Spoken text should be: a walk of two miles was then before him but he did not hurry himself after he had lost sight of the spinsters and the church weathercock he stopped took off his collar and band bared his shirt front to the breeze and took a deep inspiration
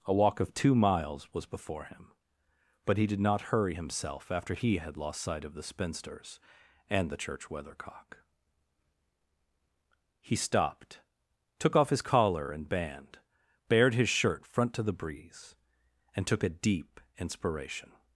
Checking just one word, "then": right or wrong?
wrong